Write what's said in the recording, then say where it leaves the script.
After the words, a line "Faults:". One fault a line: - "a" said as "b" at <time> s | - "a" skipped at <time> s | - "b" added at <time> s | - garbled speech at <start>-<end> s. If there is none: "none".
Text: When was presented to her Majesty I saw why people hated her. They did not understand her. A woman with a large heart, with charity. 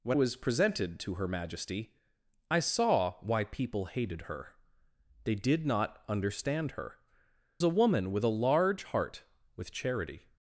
When was presented to her Majesty I saw why people hated her. They did not understand her. A woman with a large heart, with charity.
Faults:
none